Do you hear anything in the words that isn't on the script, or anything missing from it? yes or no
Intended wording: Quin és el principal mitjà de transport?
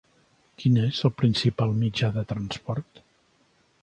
no